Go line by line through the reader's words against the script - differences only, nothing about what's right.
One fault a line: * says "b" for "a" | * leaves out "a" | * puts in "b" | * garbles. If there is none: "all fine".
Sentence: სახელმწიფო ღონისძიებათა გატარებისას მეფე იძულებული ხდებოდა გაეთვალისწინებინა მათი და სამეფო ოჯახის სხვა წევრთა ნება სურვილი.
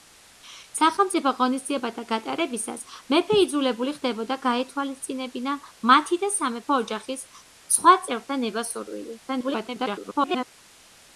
* garbles